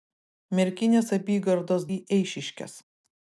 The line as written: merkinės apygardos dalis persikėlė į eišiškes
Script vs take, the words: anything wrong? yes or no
yes